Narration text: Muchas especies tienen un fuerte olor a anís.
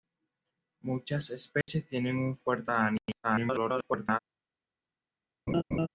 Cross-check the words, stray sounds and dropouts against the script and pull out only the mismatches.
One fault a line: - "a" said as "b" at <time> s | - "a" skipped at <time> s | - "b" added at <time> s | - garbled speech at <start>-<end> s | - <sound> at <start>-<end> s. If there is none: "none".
- dropout at 1.6-1.7 s
- "olor" skipped at 2.7 s
- garbled speech at 3.2-4.2 s
- laugh at 5.5-5.9 s